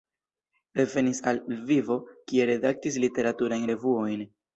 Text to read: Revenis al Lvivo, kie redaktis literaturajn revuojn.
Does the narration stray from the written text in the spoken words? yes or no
no